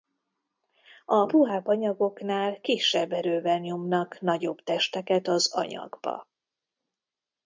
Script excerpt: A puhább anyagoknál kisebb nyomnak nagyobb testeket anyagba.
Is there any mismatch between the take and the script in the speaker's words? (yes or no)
yes